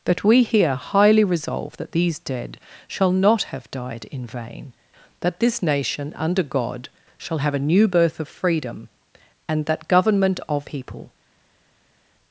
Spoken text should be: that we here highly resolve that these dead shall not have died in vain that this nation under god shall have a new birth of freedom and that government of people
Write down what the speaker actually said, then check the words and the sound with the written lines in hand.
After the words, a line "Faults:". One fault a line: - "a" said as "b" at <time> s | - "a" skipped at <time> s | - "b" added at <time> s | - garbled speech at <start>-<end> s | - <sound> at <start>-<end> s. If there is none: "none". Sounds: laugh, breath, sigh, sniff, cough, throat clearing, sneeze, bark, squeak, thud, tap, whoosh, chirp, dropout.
that we here highly resolve that these dead shall not have died in vain that this nation under god shall have a new birth of freedom and that government of people
Faults:
none